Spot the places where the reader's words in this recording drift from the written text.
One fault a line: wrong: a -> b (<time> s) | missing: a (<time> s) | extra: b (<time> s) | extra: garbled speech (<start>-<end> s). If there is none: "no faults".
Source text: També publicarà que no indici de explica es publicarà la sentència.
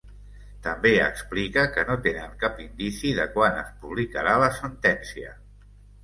wrong: publicarà -> explica (1.1 s)
extra: tenen cap (2.1 s)
wrong: explica -> quan (3.4 s)